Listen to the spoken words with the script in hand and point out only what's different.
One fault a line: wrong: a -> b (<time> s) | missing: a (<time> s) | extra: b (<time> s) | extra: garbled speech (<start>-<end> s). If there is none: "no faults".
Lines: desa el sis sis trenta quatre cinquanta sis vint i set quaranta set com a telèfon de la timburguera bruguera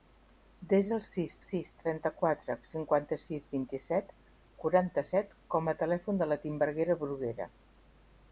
no faults